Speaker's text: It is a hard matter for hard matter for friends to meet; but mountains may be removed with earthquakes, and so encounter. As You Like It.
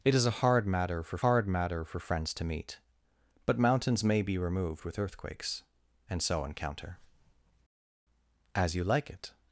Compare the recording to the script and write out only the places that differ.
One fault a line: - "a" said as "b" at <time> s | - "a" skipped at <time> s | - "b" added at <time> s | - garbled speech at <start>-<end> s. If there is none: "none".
none